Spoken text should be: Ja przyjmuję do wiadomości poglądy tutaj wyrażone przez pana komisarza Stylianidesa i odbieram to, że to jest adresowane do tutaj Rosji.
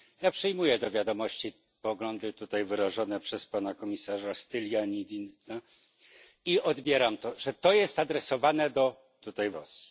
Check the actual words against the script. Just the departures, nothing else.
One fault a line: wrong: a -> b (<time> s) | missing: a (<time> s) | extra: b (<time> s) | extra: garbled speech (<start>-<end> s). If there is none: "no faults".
no faults